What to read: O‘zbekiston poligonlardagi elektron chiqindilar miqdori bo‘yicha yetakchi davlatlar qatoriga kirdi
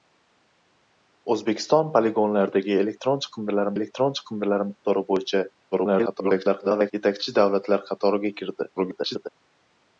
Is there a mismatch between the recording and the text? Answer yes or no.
yes